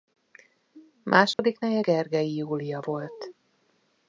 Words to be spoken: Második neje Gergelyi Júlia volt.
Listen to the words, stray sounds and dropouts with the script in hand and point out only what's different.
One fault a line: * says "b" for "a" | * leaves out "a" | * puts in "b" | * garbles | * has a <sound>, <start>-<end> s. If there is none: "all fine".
* has a dropout, 1.3-1.4 s